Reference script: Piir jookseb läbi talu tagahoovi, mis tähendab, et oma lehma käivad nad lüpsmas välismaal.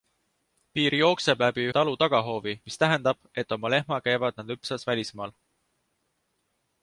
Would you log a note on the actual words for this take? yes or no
no